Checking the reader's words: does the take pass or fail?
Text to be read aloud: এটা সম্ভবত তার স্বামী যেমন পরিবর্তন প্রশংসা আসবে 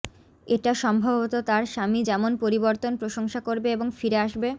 fail